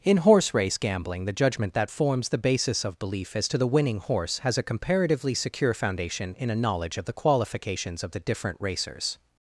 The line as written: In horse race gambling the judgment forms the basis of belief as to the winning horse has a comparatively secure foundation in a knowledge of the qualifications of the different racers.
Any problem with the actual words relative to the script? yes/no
yes